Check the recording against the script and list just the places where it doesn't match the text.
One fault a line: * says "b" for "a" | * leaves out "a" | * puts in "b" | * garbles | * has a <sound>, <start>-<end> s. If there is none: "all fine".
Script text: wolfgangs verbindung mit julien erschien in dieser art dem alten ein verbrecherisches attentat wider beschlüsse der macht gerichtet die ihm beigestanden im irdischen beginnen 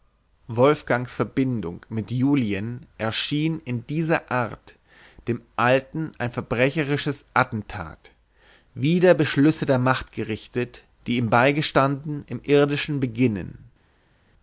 all fine